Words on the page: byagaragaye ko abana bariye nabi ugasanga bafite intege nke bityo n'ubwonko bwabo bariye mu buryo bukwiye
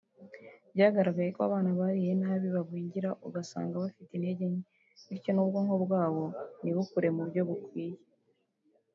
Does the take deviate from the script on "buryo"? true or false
false